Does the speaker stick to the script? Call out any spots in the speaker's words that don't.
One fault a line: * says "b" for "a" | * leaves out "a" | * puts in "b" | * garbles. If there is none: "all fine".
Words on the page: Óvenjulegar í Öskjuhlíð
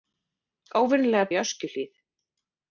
all fine